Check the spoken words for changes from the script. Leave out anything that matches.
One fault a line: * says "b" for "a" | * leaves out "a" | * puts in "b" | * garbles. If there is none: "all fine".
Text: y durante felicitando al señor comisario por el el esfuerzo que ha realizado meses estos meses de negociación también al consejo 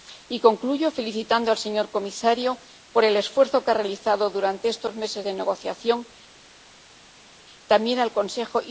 * says "concluyo" for "durante"
* leaves out "el"
* says "durante" for "meses"